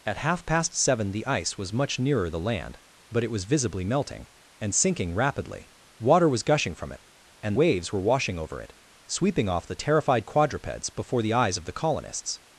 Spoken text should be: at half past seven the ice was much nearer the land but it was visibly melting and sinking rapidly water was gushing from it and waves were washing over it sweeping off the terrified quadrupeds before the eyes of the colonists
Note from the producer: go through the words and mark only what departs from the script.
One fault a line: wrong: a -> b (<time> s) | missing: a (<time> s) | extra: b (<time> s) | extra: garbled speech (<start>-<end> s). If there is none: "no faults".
no faults